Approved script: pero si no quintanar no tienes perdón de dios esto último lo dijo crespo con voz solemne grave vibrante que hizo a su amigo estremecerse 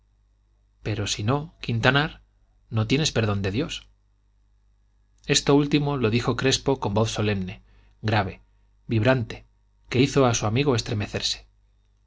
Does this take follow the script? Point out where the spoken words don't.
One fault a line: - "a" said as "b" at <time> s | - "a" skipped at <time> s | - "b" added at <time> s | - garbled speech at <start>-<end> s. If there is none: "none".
none